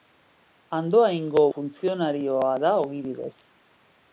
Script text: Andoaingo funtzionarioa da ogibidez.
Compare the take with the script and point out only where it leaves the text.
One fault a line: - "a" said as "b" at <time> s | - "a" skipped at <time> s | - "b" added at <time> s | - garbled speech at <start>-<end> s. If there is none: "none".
none